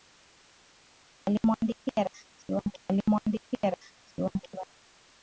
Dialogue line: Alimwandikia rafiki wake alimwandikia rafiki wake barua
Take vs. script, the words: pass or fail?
pass